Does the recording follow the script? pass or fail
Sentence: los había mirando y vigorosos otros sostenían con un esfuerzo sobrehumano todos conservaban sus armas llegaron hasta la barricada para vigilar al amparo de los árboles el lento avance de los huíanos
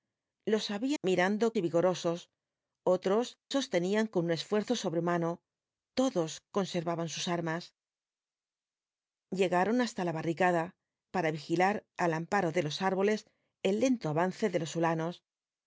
pass